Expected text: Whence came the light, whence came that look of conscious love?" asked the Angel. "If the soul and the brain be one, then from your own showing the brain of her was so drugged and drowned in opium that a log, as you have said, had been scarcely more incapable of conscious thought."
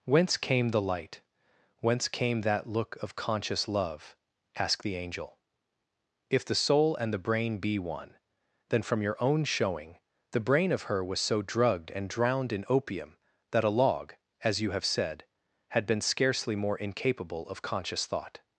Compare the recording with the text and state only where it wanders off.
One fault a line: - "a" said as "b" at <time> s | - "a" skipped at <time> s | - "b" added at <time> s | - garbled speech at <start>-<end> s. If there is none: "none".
none